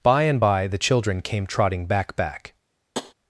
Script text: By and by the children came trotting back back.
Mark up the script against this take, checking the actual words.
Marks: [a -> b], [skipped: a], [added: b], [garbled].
By and by the children came trotting back back.